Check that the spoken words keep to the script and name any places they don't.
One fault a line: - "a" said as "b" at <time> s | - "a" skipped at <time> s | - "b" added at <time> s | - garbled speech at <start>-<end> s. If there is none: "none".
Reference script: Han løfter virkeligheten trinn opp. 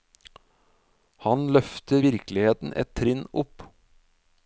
- "et" added at 2.8 s